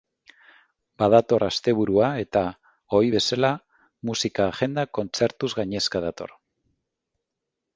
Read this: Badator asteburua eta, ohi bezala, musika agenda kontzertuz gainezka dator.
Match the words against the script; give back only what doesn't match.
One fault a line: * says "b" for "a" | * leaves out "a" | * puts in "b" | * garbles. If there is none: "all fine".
all fine